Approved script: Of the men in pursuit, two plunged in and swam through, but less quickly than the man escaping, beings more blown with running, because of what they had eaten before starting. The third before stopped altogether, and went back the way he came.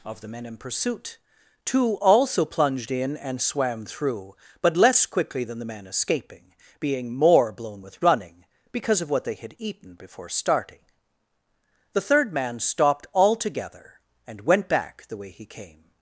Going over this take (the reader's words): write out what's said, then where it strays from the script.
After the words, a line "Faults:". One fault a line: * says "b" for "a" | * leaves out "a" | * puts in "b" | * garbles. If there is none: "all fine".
Of the men in pursuit, two also plunged in and swam through, but less quickly than the man escaping, being more blown with running, because of what they had eaten before starting. The third man stopped altogether, and went back the way he came.
Faults:
* puts in "also"
* says "being" for "beings"
* says "man" for "before"